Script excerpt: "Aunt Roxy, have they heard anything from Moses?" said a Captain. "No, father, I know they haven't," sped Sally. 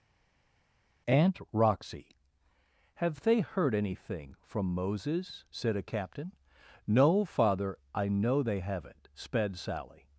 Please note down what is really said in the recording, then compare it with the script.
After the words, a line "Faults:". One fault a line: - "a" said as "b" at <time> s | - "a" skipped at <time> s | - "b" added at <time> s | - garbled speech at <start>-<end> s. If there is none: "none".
"Aunt Roxy, have they heard anything from Moses?" said a Captain. "No, father, I know they haven't," sped Sally.
Faults:
none